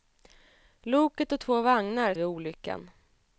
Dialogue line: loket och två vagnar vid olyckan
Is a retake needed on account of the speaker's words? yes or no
no